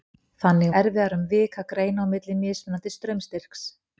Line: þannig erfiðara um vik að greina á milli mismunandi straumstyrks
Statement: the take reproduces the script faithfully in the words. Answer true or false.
true